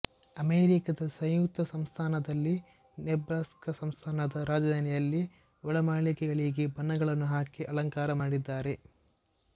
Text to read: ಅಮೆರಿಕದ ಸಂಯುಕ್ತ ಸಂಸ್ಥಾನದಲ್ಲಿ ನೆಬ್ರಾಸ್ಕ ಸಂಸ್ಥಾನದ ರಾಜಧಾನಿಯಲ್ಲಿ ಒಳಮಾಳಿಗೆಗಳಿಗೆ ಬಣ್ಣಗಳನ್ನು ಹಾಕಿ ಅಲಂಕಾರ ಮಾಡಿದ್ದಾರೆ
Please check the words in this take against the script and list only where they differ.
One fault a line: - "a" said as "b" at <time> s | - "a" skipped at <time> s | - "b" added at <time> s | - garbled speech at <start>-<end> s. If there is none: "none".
none